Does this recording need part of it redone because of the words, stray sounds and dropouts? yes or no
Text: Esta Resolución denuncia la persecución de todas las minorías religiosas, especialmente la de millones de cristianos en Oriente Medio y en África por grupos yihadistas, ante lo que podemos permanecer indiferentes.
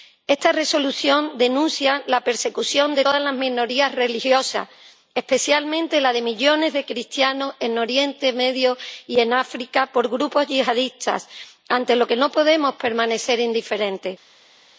yes